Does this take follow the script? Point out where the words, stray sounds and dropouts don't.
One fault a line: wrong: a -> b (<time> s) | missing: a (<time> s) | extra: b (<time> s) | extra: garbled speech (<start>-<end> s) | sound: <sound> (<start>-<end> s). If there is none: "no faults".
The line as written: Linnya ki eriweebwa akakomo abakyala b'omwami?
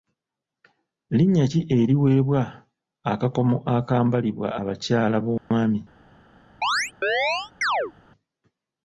extra: akambalibwa (3.7 s)
sound: dropout (5.4-5.5 s)
sound: chirp (6.6-7.9 s)